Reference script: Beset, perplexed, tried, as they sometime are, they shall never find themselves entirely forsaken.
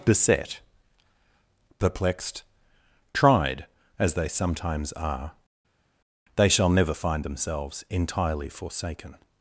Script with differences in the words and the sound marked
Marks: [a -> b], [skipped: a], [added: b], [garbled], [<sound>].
Beset, perplexed, tried, as they [sometime -> sometimes] are, they shall never find themselves entirely forsaken.